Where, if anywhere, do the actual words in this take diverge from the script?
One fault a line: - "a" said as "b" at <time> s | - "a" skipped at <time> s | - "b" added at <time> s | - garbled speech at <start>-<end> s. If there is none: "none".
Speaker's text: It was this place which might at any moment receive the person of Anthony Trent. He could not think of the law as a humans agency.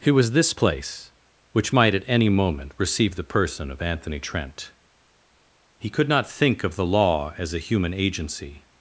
- "humans" said as "human" at 7.6 s